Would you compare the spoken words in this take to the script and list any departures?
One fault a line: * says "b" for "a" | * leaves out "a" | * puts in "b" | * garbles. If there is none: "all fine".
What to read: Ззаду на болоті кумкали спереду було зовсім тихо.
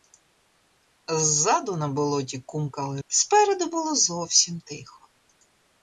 all fine